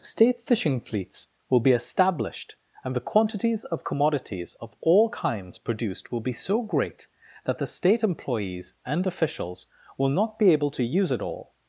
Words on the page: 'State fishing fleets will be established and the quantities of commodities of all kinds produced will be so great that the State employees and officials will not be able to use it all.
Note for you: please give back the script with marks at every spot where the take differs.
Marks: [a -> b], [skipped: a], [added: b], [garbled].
'State fishing fleets will be established and the quantities of commodities of all kinds produced will be so great that the State employees and officials will not be able to use it all.